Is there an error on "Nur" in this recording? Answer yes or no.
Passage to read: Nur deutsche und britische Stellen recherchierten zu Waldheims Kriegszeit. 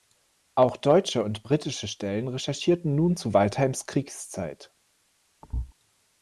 yes